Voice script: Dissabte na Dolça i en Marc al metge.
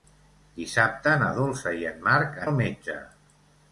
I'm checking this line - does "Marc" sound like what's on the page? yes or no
yes